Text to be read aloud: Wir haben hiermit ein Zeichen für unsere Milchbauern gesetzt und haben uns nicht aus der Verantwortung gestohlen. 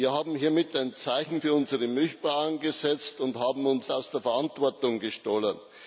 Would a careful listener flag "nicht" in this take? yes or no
yes